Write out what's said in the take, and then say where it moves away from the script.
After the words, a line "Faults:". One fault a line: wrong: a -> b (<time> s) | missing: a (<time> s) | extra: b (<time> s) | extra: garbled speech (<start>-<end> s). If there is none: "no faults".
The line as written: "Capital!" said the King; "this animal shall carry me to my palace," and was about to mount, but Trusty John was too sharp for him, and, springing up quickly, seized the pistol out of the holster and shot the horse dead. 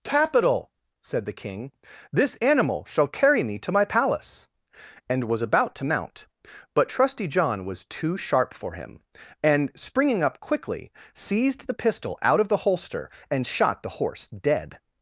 "Capital!" said the King; "this animal shall carry me to my palace," and was about to mount, but Trusty John was too sharp for him, and, springing up quickly, seized the pistol out of the holster and shot the horse dead.
Faults:
no faults